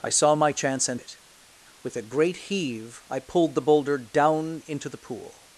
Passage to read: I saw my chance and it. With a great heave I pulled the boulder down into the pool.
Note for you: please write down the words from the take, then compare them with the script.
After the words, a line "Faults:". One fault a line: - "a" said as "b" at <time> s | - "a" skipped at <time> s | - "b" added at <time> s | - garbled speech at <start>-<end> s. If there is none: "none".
I saw my chance and it. With a great heave I pulled the boulder down into the pool.
Faults:
none